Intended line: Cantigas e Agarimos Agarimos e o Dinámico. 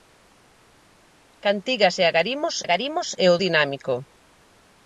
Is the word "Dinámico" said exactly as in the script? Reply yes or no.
yes